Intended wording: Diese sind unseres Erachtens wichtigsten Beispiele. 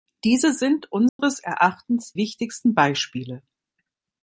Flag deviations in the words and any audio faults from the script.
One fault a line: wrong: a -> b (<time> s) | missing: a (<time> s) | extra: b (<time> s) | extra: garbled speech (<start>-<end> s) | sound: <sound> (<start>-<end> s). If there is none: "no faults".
sound: dropout (1.1-1.2 s)